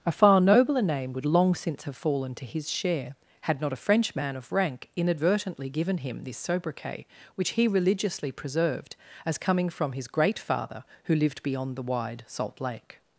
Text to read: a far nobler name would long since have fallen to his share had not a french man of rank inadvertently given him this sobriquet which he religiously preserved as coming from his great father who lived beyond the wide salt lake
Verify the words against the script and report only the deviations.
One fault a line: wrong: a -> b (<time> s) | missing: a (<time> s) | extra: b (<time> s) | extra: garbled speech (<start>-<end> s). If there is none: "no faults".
no faults